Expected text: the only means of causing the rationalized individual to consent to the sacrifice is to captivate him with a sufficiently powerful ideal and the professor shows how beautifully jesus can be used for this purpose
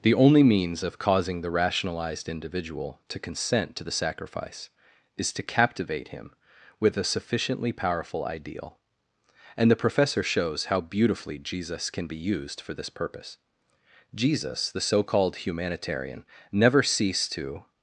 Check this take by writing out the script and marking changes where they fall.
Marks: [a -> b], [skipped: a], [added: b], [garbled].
the only means of causing the rationalized individual to consent to the sacrifice is to captivate him with a sufficiently powerful ideal and the professor shows how beautifully jesus can be used for this purpose [added: jesus the so called humanitarian never ceased to]